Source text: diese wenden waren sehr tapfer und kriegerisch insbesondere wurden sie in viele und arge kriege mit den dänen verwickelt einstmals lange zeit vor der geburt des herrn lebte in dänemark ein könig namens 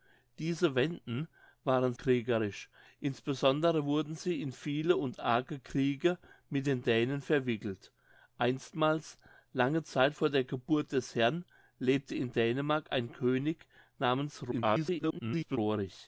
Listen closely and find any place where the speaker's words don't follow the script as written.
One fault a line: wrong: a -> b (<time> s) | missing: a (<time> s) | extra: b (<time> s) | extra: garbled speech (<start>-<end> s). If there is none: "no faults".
missing: sehr tapfer und (1.9 s)
extra: garbled speech (14.5-15.6 s)